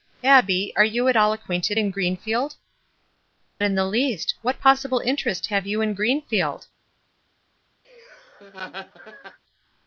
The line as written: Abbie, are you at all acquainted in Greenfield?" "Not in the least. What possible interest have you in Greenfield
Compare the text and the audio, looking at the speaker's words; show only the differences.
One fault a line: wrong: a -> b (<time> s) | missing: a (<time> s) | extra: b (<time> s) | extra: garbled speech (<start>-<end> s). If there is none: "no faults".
missing: Not (2.5 s)